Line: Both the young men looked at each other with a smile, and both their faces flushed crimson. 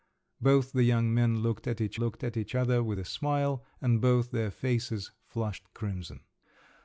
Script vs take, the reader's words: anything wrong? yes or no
yes